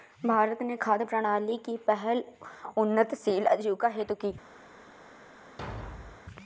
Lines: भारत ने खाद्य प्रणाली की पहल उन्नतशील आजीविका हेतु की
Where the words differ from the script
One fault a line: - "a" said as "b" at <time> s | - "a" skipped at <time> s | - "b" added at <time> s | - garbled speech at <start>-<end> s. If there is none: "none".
none